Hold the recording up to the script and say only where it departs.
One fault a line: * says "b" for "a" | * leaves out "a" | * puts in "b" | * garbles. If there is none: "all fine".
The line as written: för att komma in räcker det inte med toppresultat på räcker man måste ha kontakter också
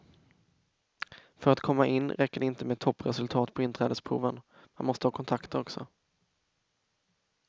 * says "inträdesproven" for "räcker"